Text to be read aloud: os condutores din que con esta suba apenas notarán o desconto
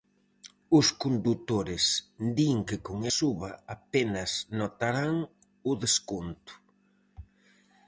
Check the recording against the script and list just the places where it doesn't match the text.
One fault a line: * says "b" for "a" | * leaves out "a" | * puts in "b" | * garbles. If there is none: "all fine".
* leaves out "esta"